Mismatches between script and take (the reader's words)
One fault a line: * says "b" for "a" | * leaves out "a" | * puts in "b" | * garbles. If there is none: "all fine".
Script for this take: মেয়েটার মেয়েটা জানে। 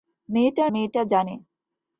all fine